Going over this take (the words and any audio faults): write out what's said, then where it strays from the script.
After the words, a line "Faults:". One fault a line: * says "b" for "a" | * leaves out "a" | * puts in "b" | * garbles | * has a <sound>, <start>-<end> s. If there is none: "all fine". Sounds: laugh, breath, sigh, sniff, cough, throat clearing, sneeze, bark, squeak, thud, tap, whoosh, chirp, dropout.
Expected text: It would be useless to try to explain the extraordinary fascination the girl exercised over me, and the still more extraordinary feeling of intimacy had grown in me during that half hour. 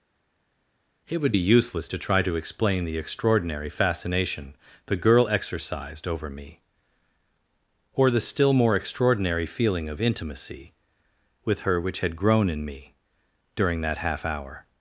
It would be useless to try to explain the extraordinary fascination the girl exercised over me, or the still more extraordinary feeling of intimacy with her which had grown in me during that half hour.
Faults:
* says "or" for "and"
* puts in "with her which"